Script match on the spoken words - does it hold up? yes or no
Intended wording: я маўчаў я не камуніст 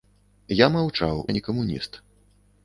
yes